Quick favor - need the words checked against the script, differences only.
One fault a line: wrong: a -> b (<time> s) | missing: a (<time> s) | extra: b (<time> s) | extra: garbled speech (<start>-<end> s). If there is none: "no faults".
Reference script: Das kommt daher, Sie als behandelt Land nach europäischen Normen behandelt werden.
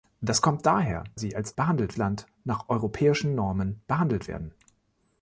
no faults